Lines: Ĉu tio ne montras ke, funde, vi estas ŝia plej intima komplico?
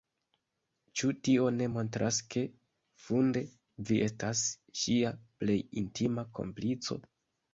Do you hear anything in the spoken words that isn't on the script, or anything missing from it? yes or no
no